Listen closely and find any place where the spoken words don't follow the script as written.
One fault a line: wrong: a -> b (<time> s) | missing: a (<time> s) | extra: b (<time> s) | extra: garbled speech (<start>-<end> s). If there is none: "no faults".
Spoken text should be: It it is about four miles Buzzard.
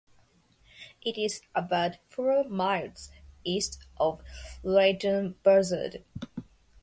missing: it (1.1 s)
extra: east of Leighton (3.4 s)